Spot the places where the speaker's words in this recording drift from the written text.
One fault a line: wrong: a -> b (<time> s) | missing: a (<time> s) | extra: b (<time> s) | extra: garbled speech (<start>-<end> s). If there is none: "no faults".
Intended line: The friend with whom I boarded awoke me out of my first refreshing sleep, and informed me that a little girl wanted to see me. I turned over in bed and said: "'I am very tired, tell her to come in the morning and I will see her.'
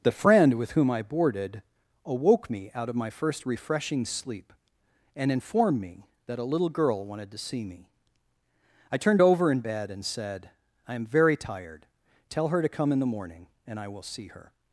no faults